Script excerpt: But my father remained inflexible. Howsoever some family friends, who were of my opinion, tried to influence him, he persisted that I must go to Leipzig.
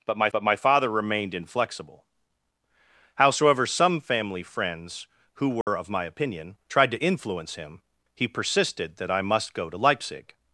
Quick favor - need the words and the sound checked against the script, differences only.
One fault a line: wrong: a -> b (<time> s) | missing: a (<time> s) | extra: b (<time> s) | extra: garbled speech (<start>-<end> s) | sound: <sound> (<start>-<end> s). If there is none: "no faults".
extra: but my (0.3 s)
sound: dropout (5.6-5.7 s)